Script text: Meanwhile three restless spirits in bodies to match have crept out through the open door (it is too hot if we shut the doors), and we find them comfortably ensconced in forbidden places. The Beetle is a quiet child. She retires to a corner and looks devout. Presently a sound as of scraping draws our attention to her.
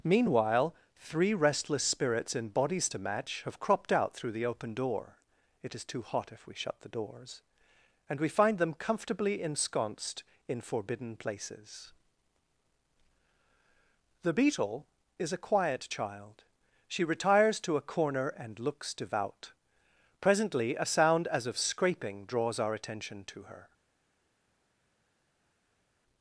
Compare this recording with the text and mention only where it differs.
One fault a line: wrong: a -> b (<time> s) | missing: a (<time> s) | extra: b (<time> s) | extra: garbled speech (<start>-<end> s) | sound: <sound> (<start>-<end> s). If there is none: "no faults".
wrong: crept -> cropped (3.6 s)